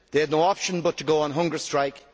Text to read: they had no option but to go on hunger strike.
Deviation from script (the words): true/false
false